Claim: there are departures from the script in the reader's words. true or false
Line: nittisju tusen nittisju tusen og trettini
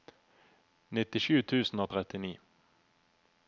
true